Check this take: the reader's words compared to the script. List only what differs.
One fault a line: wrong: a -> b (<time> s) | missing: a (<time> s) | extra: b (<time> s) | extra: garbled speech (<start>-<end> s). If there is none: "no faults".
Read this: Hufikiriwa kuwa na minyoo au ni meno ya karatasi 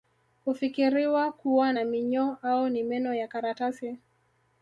no faults